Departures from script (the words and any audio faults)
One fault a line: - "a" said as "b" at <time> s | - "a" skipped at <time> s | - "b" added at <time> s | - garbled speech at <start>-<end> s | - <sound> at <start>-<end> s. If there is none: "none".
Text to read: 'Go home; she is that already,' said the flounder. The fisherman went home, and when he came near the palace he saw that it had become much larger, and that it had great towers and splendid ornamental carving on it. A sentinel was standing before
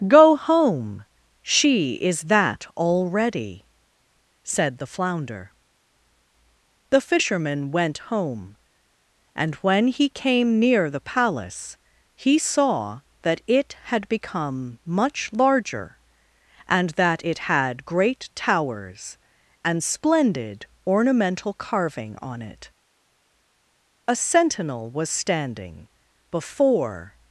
none